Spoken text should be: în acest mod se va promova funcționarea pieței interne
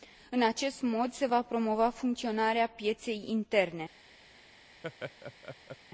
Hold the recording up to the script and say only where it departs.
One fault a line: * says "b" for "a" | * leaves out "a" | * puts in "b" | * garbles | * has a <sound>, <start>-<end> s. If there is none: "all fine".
* has a laugh, 4.8-5.8 s